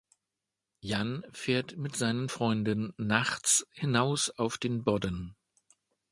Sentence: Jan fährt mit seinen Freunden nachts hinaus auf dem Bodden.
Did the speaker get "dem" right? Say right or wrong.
wrong